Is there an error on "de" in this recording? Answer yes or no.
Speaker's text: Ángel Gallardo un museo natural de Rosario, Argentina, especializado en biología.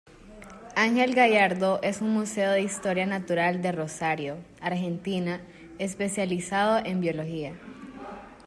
no